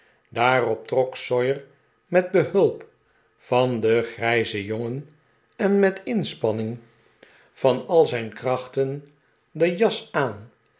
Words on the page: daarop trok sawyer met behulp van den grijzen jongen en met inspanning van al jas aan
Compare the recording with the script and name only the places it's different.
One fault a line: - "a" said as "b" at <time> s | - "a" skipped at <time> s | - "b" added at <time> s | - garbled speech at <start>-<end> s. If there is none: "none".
- "zijn krachten de" added at 8.1 s